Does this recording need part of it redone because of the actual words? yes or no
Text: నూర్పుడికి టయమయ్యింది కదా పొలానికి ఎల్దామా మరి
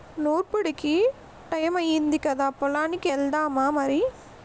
no